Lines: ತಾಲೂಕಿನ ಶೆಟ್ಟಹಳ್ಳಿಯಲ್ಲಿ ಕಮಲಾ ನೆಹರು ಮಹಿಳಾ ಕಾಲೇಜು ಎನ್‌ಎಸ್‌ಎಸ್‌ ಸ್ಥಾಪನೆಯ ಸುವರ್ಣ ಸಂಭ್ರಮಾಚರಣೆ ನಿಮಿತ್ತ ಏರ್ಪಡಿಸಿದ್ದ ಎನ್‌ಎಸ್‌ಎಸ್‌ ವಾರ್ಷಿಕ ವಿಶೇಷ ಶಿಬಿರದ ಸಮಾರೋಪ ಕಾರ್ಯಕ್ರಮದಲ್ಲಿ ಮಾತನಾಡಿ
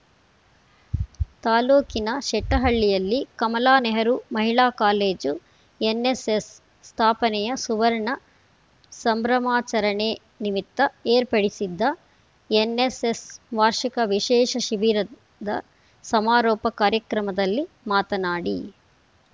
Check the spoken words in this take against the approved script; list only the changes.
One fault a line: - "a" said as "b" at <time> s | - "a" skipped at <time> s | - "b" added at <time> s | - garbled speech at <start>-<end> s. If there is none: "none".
none